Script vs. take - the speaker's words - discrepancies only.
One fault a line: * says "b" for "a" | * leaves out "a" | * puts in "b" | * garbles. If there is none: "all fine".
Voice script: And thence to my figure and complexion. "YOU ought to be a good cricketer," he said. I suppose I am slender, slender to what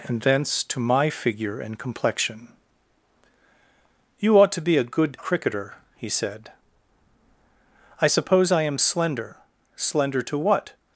all fine